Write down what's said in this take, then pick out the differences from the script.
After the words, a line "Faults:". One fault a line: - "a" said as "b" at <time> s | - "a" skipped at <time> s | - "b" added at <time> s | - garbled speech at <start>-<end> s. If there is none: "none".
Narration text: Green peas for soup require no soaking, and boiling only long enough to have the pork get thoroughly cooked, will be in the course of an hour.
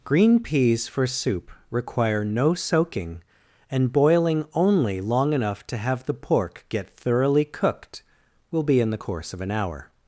Green peas for soup require no soaking, and boiling only long enough to have the pork get thoroughly cooked, will be in the course of an hour.
Faults:
none